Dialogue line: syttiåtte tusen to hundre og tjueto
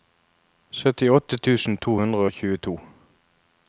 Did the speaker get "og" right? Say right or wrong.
right